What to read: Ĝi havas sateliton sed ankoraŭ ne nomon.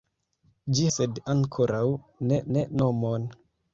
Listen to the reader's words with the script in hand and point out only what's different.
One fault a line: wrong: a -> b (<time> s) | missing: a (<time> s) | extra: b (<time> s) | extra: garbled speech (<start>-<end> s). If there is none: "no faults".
missing: havas sateliton (0.8 s)
extra: ne (2.6 s)